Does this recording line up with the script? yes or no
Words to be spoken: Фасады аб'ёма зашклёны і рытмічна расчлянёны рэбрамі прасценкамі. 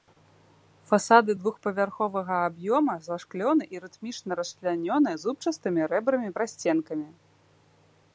no